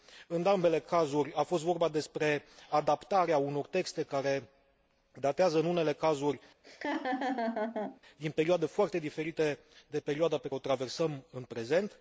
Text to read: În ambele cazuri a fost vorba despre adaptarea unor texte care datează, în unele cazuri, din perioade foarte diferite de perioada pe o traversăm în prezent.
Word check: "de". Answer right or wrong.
right